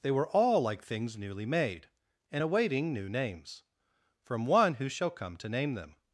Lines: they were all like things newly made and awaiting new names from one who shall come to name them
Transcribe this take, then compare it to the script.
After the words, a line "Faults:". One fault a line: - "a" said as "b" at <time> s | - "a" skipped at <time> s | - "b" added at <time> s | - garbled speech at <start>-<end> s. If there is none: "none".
they were all like things newly made and awaiting new names from one who shall come to name them
Faults:
none